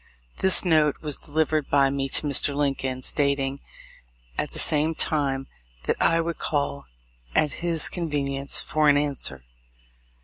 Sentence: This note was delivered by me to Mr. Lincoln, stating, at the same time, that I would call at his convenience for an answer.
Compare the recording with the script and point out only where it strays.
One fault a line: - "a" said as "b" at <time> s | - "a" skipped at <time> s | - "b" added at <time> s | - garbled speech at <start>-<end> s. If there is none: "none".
none